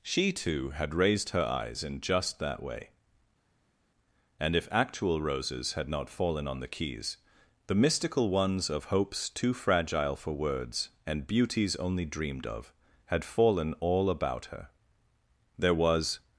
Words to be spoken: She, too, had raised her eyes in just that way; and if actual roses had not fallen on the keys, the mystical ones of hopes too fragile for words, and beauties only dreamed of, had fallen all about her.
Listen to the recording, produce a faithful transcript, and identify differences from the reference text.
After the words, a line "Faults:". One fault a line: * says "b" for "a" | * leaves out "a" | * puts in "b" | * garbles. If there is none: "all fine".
She, too, had raised her eyes in just that way; and if actual roses had not fallen on the keys, the mystical ones of hopes too fragile for words, and beauties only dreamed of, had fallen all about her. There was
Faults:
* puts in "There was"